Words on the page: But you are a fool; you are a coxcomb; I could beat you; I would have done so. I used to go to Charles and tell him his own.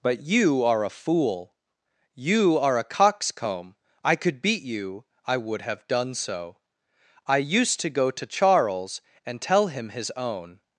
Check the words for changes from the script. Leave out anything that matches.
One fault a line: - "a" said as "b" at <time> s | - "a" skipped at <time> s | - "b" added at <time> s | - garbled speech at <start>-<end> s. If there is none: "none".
none